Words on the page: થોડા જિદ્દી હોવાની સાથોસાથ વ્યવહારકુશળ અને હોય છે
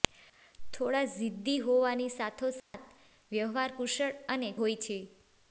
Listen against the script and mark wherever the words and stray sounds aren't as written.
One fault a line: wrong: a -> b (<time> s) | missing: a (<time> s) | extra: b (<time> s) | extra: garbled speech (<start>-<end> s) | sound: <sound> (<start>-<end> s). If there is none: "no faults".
sound: dropout (2.6-2.7 s)